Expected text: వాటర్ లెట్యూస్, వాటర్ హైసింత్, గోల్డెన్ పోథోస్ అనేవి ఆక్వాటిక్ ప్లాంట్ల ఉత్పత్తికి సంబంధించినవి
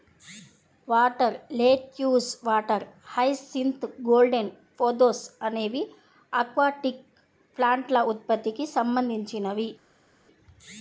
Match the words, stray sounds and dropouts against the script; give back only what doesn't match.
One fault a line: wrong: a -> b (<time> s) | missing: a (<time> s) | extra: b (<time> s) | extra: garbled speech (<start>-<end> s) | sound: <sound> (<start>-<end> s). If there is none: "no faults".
no faults